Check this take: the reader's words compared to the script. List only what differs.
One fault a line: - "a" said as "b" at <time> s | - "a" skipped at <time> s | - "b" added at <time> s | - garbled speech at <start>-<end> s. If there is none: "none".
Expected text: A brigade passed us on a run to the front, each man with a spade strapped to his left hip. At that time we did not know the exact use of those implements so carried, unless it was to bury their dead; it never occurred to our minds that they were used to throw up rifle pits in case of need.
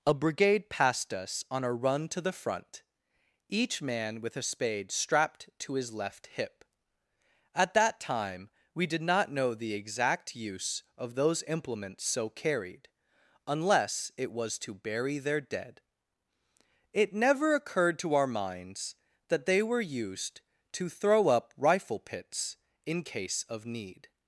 none